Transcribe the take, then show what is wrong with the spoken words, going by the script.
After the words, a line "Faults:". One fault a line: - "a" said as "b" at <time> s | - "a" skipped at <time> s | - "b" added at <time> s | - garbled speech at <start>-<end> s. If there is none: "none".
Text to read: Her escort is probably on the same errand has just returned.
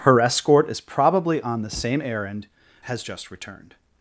Her escort is probably on the same errand has just returned.
Faults:
none